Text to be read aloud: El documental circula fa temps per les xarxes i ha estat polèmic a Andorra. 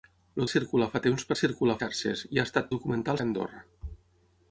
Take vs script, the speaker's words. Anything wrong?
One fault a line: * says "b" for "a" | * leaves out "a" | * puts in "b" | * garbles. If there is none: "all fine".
* leaves out "documental"
* says "circula" for "les"
* says "documental" for "polèmic"